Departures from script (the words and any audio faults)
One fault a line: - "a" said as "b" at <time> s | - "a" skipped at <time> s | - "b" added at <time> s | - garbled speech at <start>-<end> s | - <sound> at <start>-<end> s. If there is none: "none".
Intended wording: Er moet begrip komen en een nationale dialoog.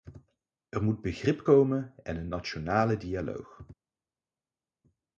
none